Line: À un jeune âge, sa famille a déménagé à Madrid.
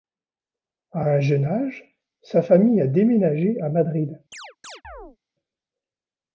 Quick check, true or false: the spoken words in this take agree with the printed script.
true